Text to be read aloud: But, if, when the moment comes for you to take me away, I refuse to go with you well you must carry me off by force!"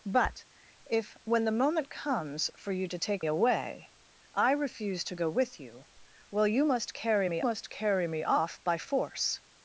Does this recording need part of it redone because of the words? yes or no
yes